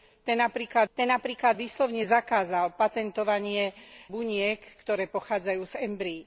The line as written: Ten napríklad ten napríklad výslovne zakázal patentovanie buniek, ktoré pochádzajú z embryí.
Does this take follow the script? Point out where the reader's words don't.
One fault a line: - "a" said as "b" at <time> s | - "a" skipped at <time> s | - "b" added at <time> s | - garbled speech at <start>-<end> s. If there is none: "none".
none